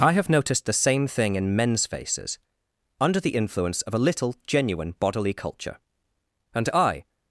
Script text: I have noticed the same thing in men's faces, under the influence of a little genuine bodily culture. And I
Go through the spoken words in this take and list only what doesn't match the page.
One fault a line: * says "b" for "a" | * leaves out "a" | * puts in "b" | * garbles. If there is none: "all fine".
all fine